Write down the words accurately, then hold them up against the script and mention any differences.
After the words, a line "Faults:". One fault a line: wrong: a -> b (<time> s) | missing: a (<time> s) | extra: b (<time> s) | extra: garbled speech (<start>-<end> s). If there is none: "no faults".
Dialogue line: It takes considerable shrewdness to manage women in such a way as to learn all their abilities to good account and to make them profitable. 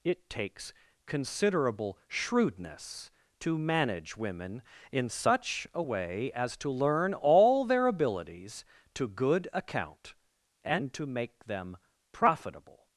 It takes considerable shrewdness to manage women in such a way as to learn all their abilities to good account and to make them profitable.
Faults:
no faults